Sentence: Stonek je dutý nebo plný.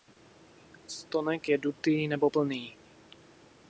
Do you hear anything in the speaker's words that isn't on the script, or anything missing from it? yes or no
no